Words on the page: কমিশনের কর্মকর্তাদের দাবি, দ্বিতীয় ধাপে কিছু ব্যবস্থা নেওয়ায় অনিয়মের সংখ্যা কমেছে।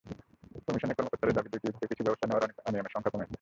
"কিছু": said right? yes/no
yes